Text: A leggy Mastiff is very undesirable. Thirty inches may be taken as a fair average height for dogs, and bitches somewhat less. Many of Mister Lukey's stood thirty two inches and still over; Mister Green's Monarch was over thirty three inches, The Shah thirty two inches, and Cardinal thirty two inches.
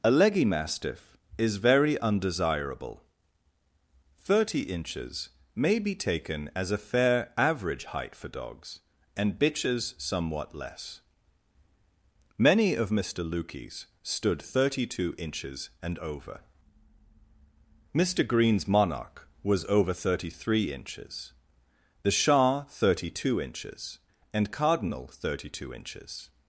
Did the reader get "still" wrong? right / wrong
wrong